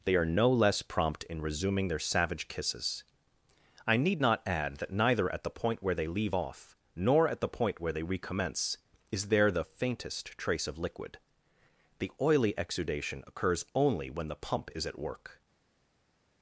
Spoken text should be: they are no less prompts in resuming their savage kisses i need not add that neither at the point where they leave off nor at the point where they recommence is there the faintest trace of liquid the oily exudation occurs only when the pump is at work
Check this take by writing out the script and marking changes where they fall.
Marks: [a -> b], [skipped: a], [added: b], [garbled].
they are no less [prompts -> prompt] in resuming their savage kisses i need not add that neither at the point where they leave off nor at the point where they recommence is there the faintest trace of liquid the oily exudation occurs only when the pump is at work